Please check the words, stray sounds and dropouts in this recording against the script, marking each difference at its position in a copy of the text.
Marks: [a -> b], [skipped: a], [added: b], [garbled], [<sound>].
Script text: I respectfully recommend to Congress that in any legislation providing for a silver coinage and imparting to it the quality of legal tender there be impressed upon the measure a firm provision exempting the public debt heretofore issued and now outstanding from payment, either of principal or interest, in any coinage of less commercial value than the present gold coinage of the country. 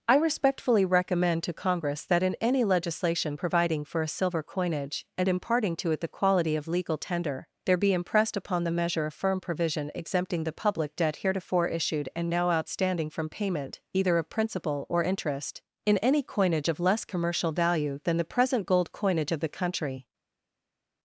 I respectfully recommend to Congress that in any legislation providing for a silver coinage and imparting to it the quality of legal tender there be impressed upon the measure a firm provision exempting the public debt heretofore issued and now outstanding from payment, either of principal or interest, in any coinage of less commercial value than the present gold coinage of the country.